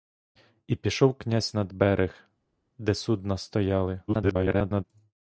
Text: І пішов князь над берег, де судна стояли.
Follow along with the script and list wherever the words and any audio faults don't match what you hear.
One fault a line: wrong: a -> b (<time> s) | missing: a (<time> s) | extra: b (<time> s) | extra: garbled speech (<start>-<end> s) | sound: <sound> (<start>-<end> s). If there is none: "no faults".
extra: garbled speech (4.1-4.8 s)